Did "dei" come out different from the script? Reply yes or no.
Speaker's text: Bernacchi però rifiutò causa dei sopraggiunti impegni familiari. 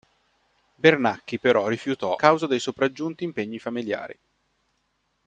no